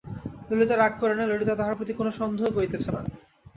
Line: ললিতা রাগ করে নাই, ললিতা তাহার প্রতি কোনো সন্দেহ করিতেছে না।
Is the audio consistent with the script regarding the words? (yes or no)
yes